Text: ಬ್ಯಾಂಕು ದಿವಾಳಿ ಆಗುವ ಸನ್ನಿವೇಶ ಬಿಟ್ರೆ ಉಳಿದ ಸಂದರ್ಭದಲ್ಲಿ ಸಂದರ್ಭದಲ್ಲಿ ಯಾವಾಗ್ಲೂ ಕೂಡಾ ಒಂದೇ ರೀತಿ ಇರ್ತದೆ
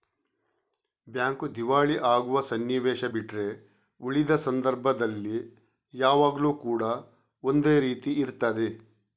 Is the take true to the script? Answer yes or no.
no